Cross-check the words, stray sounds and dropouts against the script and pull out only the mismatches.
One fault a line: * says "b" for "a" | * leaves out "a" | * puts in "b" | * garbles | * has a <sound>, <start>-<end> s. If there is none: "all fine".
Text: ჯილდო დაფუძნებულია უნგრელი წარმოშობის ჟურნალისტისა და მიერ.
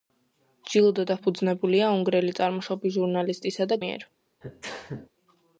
* has a sneeze, 4.4-5.1 s